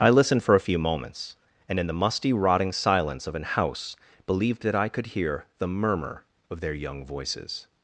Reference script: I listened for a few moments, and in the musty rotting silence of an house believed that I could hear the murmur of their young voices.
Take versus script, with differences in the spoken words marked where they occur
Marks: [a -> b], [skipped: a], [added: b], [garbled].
I listened for a few moments, and in the musty rotting silence of an house believed that I could hear the murmur of their young voices.